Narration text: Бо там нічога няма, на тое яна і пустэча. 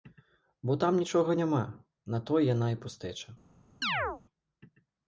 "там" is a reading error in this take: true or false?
false